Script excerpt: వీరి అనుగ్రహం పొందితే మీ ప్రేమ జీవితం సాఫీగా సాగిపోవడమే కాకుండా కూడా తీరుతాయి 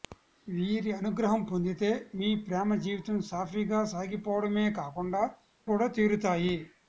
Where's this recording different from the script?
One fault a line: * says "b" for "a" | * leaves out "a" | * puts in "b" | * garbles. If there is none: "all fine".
all fine